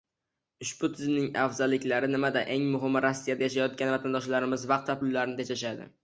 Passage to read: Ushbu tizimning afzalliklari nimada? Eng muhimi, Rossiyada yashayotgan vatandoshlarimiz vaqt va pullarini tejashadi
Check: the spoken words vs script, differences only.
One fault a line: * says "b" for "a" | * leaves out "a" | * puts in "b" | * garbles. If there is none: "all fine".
all fine